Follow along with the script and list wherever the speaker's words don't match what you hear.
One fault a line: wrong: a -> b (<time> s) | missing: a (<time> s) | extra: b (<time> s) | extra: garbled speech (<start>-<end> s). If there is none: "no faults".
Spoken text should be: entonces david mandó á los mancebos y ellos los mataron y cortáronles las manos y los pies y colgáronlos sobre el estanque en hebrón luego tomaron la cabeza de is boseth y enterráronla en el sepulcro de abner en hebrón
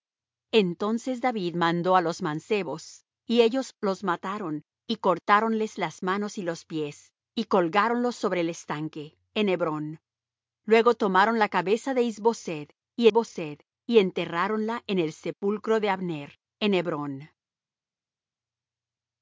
extra: boseth y (13.1 s)